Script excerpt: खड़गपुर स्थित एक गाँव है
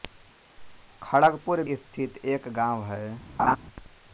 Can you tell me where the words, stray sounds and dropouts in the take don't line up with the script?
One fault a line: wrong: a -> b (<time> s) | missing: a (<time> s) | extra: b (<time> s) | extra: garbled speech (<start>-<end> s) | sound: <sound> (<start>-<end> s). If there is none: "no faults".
sound: laugh (3.4-3.6 s)